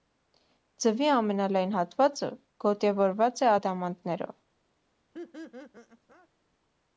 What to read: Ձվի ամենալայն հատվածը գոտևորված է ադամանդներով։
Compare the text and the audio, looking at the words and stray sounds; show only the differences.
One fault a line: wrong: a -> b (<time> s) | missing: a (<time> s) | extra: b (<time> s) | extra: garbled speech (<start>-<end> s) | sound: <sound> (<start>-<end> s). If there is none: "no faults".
sound: laugh (5.1-6.3 s)